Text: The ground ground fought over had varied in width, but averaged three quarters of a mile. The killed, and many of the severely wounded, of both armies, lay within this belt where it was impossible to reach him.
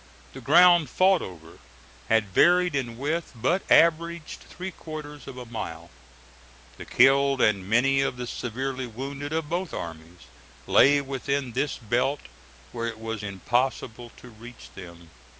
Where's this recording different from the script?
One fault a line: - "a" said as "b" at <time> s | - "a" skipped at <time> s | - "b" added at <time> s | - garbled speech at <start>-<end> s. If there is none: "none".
- "ground" skipped at 0.9 s
- "him" said as "them" at 14.7 s